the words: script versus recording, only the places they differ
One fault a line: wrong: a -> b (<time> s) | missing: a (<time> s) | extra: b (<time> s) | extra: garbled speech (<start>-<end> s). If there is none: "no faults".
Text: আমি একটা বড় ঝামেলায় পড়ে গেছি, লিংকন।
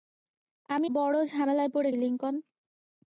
missing: একটা (0.9 s)
missing: গেছি (1.9 s)